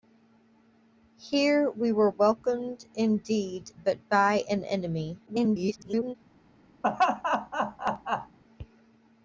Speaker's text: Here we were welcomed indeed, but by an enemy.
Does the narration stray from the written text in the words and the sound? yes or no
yes